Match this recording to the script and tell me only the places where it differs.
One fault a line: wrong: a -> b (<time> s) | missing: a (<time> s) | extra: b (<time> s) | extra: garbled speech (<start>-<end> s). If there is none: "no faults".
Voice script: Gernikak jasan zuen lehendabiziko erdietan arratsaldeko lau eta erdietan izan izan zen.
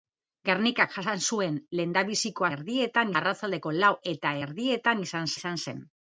no faults